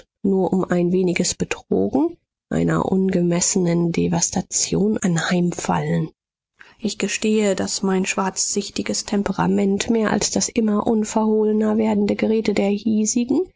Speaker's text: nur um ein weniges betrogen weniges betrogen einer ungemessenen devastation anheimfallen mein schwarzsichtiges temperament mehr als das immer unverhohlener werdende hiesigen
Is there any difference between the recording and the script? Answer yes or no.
yes